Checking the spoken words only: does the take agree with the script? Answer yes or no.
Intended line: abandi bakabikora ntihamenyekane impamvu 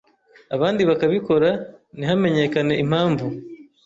yes